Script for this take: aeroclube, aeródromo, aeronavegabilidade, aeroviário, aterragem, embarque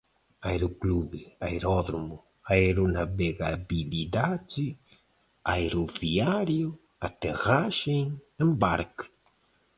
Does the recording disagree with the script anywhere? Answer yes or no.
no